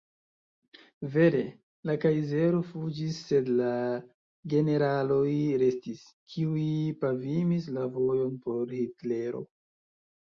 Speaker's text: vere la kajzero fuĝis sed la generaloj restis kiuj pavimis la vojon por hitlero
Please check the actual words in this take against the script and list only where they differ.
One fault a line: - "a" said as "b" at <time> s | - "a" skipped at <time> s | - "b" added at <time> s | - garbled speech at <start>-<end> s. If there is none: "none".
none